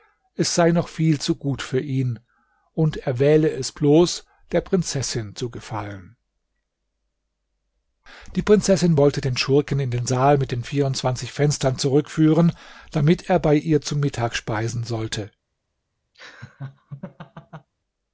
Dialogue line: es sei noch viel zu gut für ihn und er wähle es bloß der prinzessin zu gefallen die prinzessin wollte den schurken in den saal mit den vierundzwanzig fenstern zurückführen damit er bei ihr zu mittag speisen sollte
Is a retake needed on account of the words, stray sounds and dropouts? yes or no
yes